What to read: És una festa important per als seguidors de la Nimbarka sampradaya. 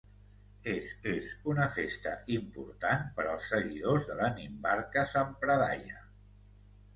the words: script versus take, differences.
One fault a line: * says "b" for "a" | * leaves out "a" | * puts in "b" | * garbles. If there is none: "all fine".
* puts in "és"